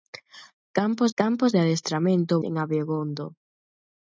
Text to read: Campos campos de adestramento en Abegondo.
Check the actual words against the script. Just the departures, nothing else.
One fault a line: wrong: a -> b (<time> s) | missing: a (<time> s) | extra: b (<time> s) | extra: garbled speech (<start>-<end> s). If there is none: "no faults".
no faults